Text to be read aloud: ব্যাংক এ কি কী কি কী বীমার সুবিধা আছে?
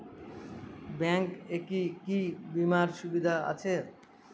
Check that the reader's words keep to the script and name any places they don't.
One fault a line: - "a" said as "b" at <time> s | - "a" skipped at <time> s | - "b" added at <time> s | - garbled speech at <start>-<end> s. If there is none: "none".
- "কি কী" skipped at 2.2 s